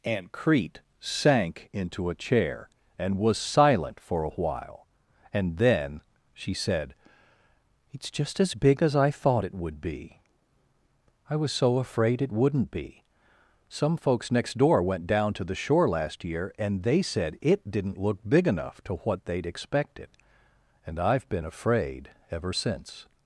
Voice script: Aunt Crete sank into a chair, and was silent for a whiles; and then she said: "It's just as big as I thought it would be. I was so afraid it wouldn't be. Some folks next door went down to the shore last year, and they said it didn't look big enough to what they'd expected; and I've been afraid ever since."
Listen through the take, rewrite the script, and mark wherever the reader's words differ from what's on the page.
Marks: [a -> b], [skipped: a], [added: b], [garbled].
Aunt Crete sank into a chair, and was silent for a [whiles; -> while] and then she said: "It's just as big as I thought it would be. I was so afraid it wouldn't be. Some folks next door went down to the shore last year, and they said it didn't look big enough to what they'd expected; and I've been afraid ever since."